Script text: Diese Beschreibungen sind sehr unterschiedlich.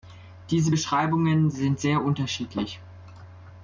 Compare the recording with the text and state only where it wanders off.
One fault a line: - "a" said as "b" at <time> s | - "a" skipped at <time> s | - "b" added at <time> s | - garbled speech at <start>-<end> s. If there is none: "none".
none